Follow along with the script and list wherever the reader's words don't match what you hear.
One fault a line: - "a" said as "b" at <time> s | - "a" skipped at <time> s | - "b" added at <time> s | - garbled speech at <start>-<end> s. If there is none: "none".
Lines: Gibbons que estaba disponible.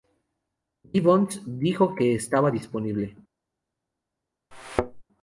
- "dijo" added at 1.4 s